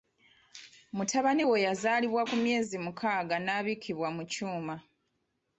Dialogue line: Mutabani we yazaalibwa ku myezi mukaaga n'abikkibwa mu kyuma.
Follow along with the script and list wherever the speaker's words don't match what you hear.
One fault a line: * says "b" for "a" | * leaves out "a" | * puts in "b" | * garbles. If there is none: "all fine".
all fine